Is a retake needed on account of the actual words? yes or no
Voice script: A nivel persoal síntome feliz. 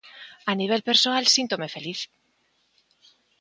no